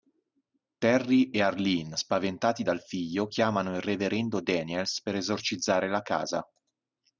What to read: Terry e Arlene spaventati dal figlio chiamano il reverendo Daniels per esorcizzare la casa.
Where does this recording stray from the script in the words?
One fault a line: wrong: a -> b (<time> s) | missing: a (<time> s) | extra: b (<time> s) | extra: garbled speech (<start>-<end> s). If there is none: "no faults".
no faults